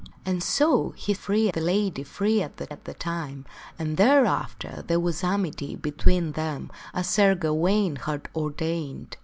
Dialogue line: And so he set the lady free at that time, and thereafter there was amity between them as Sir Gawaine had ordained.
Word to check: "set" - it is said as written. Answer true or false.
false